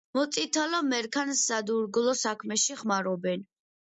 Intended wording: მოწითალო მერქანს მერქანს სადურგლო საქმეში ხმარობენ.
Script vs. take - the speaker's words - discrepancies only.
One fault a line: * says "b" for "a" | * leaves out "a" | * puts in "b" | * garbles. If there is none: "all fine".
* leaves out "მერქანს"